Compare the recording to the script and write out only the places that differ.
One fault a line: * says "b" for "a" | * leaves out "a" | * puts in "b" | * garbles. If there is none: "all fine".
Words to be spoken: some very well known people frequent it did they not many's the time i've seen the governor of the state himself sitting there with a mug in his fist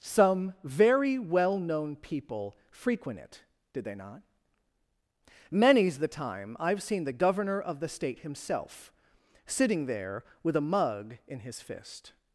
all fine